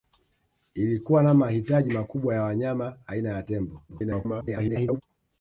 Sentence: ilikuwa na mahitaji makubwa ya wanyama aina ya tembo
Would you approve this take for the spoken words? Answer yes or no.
no